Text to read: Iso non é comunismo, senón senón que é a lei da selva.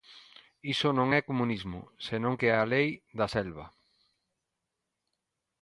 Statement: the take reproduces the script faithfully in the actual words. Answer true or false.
false